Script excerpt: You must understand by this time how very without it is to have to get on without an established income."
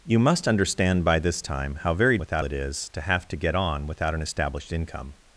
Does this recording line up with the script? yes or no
yes